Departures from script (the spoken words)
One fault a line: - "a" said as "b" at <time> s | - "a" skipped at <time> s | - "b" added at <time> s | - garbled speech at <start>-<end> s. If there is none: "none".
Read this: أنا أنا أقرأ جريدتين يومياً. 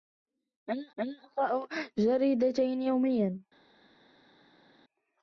none